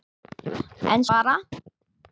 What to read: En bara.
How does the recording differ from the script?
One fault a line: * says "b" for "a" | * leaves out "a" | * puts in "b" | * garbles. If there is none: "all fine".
all fine